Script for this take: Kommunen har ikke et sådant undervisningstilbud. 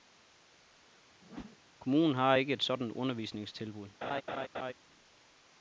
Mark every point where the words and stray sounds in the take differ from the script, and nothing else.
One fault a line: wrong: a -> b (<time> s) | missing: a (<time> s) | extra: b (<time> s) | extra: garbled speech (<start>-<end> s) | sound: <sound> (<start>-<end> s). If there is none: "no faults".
sound: whoosh (1.2-1.6 s)
sound: laugh (4.0-4.7 s)